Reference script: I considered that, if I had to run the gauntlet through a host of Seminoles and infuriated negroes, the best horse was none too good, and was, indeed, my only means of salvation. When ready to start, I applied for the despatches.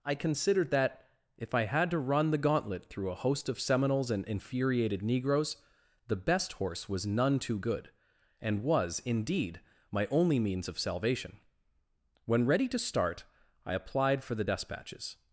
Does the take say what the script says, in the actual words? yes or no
yes